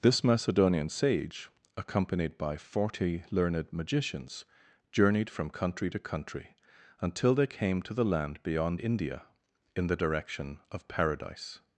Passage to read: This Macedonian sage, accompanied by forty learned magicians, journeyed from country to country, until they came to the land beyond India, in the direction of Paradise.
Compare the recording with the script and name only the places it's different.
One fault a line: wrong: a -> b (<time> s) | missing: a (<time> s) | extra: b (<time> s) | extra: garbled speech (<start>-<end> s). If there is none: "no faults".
no faults